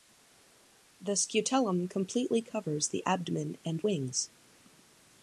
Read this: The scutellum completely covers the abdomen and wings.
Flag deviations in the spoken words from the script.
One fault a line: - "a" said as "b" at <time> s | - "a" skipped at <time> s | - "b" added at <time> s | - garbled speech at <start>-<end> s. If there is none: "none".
none